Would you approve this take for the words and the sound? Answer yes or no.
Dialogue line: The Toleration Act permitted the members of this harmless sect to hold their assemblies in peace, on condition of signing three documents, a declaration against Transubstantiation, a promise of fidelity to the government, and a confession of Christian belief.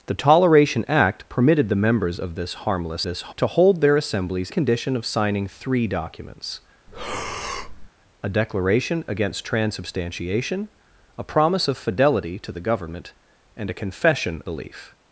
no